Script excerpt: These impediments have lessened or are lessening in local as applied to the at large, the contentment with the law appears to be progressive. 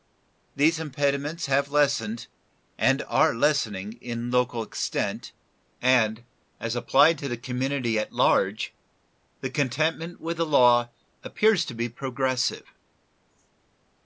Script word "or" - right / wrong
wrong